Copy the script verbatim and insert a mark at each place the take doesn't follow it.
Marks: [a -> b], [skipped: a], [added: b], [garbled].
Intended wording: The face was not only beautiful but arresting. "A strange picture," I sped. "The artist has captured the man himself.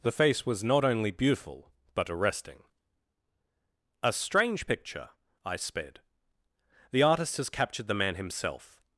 The face was not only beautiful but arresting. "A strange picture," I sped. "The artist has captured the man himself.